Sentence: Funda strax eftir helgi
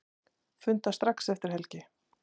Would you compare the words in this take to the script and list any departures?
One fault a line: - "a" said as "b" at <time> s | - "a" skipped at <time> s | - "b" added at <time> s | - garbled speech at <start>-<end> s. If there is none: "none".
none